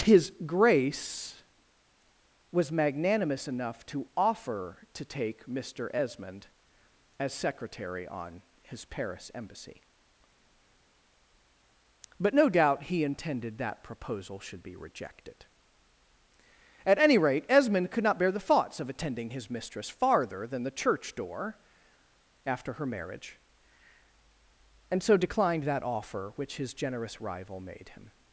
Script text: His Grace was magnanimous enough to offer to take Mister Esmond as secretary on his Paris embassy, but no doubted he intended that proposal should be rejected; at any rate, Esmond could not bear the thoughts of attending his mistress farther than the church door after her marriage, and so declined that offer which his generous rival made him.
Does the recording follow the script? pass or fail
fail